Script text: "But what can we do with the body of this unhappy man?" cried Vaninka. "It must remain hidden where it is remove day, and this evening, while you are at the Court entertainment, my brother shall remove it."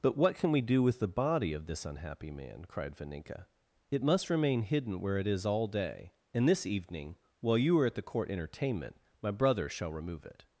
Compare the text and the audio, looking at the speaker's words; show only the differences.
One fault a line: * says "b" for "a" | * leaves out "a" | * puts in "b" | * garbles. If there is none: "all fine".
* says "all" for "remove"